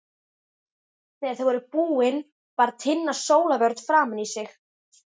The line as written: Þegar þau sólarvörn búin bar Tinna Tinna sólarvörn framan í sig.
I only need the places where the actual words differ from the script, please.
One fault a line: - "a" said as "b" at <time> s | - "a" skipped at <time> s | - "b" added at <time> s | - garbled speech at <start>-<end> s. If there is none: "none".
- "sólarvörn" said as "voru" at 1.5 s
- "Tinna" skipped at 3.2 s